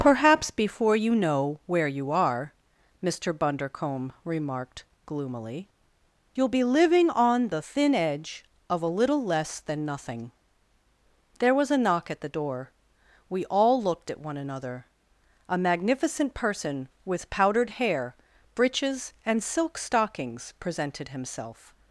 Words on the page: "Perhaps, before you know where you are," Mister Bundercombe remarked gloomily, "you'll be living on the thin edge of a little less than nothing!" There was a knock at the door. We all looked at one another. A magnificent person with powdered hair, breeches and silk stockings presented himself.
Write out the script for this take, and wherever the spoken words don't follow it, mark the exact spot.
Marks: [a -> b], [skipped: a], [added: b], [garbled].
"Perhaps, before you know where you are," Mister Bundercombe remarked gloomily, "you'll be living on the thin edge of a little less than nothing!" There was a knock at the door. We all looked at one another. A magnificent person with powdered hair, breeches and silk stockings presented himself.